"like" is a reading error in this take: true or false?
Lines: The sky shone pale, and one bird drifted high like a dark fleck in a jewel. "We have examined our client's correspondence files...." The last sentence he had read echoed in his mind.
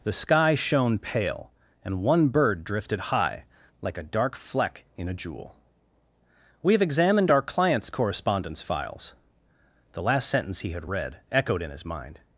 false